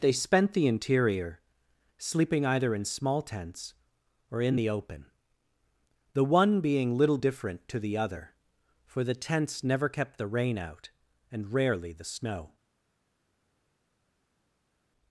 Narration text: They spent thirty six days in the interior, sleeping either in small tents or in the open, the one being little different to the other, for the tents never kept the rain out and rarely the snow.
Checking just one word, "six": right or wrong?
wrong